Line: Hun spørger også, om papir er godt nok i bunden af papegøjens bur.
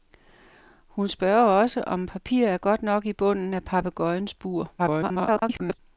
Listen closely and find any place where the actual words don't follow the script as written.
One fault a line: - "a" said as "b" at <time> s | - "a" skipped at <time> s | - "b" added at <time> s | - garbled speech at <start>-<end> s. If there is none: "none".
- garbled speech at 4.8-5.8 s